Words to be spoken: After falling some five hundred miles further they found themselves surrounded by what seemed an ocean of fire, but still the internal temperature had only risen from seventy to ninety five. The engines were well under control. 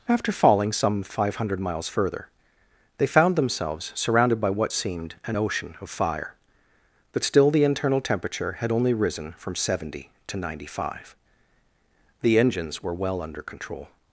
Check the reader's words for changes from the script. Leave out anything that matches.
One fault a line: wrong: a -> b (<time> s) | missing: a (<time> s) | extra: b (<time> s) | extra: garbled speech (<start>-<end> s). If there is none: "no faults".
no faults